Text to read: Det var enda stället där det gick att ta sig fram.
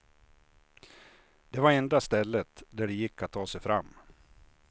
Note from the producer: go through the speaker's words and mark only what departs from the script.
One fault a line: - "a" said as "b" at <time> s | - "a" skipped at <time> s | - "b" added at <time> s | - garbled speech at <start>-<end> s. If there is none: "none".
none